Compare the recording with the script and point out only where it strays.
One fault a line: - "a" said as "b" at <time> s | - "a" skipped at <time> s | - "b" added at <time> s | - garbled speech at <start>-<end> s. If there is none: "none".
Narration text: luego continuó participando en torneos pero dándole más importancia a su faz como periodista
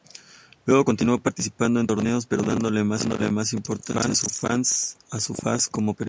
none